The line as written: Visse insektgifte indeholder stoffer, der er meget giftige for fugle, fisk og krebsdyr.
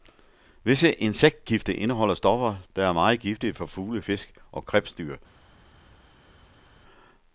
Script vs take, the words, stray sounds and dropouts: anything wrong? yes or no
no